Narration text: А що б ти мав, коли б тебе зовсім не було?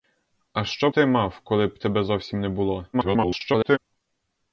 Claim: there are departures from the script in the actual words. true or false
true